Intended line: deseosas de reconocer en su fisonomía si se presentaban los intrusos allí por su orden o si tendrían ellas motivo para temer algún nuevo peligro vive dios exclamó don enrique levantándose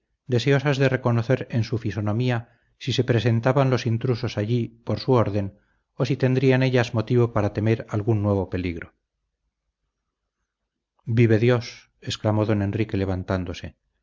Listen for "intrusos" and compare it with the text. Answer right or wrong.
right